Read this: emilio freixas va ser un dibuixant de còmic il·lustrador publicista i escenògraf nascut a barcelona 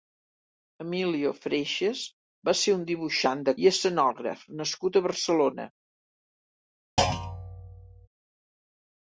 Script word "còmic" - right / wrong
wrong